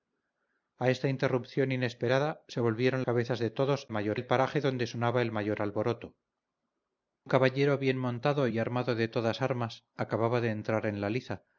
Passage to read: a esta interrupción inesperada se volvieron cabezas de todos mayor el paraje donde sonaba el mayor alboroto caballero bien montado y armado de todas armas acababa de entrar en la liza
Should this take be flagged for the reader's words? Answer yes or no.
no